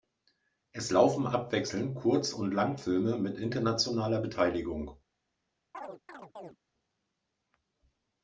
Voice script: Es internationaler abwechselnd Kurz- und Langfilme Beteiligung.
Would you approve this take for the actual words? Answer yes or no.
no